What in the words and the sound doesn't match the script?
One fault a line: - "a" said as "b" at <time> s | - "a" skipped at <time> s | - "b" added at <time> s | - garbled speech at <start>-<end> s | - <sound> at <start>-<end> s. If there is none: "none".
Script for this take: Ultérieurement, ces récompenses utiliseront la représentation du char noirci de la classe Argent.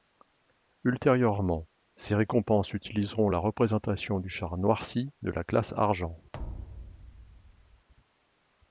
- thud at 6.3-7.9 s